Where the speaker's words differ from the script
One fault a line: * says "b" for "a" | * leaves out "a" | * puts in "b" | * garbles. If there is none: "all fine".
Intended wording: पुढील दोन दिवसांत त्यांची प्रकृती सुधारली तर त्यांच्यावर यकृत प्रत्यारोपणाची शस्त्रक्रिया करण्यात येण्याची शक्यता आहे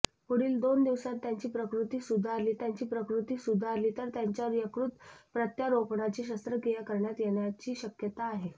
* puts in "त्यांची प्रकृती सुधारली"